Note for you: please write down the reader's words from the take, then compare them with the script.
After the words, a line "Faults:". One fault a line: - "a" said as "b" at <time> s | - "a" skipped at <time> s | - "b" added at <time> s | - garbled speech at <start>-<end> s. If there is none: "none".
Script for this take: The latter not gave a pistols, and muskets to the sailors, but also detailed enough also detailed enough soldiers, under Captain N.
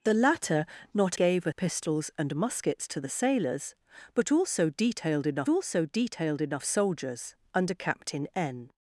The latter not gave a pistols, and muskets to the sailors, but also detailed enough also detailed enough soldiers, under Captain N.
Faults:
none